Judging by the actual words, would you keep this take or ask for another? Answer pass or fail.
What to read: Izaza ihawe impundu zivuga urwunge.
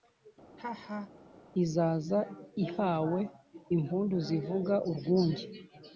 pass